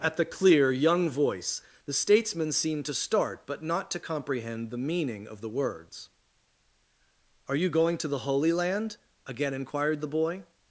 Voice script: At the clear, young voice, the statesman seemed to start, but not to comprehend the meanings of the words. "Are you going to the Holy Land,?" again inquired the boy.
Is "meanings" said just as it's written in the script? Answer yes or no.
no